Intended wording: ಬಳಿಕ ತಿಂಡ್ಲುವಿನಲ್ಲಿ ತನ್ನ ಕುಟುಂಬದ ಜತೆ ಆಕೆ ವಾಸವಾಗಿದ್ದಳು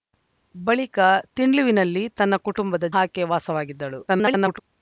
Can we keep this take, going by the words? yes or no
no